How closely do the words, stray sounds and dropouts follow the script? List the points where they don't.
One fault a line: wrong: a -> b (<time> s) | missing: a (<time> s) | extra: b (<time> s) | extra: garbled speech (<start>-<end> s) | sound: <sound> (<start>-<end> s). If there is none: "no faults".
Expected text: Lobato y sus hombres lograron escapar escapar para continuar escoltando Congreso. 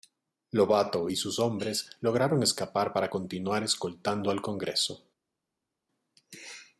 missing: escapar (2.9 s)
extra: al (4.3 s)